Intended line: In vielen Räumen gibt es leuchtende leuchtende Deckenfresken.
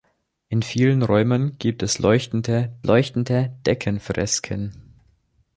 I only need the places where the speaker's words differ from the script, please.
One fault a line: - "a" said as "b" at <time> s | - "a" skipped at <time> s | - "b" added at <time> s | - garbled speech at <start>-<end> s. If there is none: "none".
none